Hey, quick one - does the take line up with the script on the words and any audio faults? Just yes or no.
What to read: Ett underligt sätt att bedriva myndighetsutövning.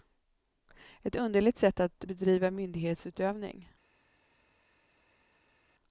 yes